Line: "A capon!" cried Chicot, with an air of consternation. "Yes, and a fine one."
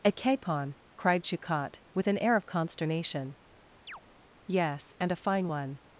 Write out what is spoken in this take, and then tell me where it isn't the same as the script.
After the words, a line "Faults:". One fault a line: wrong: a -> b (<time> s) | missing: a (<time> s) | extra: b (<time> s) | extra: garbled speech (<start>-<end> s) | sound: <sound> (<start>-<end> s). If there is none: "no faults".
"A capon!" cried Chicot, with an air of consternation. "Yes, and a fine one."
Faults:
sound: chirp (3.9-4.0 s)